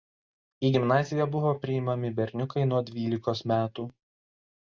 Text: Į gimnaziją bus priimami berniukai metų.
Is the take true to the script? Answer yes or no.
no